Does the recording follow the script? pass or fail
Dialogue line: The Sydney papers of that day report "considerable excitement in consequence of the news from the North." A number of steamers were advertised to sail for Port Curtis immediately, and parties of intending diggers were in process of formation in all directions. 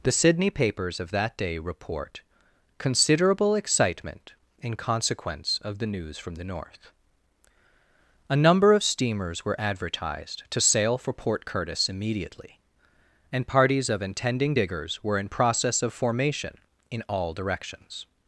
pass